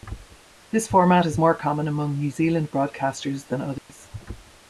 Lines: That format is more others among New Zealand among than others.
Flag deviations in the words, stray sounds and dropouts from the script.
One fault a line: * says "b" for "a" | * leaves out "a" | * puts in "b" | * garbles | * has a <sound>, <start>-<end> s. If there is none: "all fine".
* says "This" for "That"
* says "common" for "others"
* says "broadcasters" for "among"
* has a dropout, 3.8-3.9 s